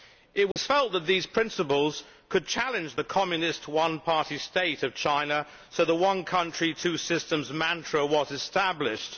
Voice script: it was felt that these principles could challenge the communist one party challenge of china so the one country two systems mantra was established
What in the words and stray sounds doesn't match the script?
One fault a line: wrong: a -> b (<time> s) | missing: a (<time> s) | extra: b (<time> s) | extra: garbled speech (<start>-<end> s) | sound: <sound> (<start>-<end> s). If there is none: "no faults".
sound: dropout (0.5-0.6 s)
wrong: challenge -> state (4.4 s)